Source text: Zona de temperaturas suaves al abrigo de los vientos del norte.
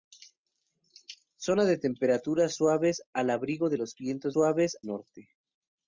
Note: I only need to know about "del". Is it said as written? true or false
false